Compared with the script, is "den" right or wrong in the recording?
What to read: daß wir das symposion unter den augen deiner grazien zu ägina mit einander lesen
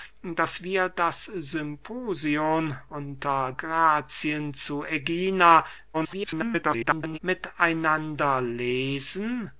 wrong